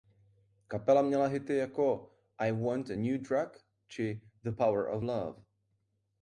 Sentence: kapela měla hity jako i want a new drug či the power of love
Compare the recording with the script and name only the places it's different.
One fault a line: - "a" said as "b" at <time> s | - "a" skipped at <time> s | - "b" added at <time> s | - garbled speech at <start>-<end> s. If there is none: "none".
none